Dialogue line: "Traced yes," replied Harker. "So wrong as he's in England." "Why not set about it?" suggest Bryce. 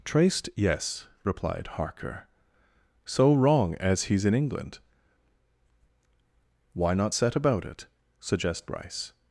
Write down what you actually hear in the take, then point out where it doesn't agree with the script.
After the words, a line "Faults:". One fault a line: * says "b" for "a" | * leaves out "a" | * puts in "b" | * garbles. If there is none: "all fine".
"Traced yes," replied Harker. "So wrong as he's in England." "Why not set about it?" suggest Bryce.
Faults:
all fine